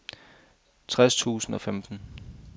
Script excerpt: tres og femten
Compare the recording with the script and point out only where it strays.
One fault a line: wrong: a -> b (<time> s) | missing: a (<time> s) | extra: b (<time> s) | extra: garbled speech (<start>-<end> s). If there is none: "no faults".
extra: tusind (1.1 s)